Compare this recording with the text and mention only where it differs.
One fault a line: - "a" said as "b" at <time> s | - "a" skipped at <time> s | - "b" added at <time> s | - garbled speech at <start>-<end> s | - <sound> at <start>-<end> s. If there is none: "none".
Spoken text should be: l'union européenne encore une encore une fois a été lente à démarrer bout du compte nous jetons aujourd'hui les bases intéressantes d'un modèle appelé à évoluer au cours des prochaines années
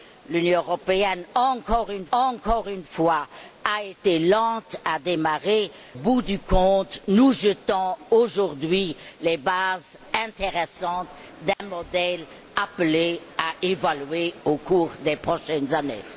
- dropout at 11.5-11.6 s